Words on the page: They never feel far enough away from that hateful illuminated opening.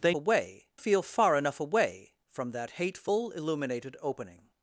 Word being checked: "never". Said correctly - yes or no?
no